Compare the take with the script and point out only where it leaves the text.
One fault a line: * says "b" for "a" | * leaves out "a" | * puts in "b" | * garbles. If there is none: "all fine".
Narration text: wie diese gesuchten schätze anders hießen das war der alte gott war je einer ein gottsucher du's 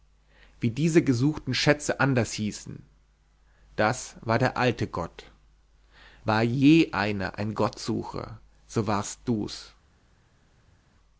* puts in "so warst"